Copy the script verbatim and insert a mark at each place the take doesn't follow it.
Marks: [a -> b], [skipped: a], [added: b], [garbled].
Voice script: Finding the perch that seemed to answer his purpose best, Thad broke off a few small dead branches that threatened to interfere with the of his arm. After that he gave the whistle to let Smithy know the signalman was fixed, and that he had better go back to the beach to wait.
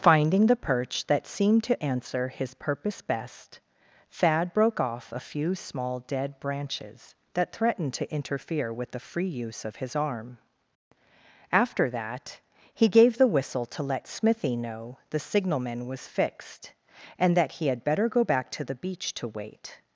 Finding the perch that seemed to answer his purpose best, Thad broke off a few small dead branches that threatened to interfere with the [added: free use] of his arm. After that he gave the whistle to let Smithy know the signalman was fixed, and that he had better go back to the beach to wait.